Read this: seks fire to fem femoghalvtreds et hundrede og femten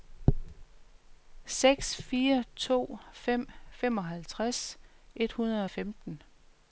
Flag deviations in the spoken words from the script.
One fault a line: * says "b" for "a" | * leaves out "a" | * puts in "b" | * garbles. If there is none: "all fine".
all fine